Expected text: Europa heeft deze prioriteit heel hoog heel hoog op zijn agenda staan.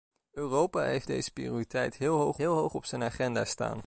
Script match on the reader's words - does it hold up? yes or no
yes